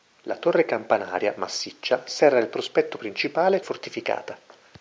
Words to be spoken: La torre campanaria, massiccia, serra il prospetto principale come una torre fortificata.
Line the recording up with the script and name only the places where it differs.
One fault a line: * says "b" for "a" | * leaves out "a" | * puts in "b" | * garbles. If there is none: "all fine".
* leaves out "come una torre"